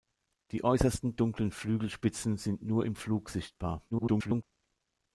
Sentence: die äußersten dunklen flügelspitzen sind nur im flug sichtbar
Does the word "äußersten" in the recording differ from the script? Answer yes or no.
no